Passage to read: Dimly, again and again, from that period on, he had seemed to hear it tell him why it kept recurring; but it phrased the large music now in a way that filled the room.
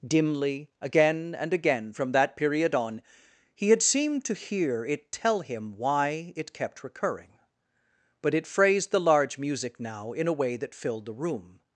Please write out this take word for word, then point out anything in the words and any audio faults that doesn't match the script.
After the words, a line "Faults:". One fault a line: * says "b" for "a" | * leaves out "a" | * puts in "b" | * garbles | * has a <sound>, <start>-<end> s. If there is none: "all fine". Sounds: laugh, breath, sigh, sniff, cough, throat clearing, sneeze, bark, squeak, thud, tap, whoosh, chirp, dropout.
Dimly, again and again, from that period on, he had seemed to hear it tell him why it kept recurring; but it phrased the large music now in a way that filled the room.
Faults:
all fine